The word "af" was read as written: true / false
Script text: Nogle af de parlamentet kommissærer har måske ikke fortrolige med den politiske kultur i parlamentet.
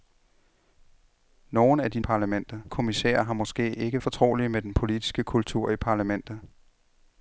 true